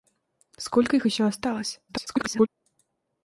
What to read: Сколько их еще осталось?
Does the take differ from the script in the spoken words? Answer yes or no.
yes